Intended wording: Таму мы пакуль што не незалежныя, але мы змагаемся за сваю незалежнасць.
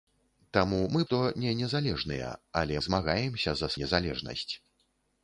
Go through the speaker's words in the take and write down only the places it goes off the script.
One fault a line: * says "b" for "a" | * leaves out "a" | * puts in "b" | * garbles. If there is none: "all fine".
* leaves out "пакуль"
* leaves out "мы"
* leaves out "сваю"